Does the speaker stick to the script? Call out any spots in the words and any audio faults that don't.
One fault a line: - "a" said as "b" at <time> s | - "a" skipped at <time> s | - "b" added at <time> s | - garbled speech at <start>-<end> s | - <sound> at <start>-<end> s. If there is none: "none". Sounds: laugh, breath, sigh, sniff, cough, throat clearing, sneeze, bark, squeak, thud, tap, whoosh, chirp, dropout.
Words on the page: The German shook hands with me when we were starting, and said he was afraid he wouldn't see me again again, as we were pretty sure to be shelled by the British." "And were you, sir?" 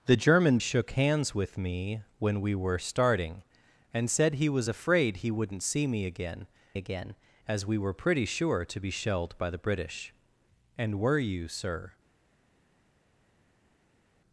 none